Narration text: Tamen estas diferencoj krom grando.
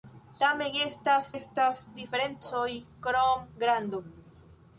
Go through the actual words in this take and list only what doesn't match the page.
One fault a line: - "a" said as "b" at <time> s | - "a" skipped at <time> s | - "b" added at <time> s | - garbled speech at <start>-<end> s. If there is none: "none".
- "estas" added at 1.3 s